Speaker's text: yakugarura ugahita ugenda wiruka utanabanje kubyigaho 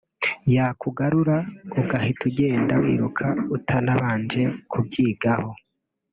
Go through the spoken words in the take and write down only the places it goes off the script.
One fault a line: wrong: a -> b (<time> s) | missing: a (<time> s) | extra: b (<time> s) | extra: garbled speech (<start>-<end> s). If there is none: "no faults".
no faults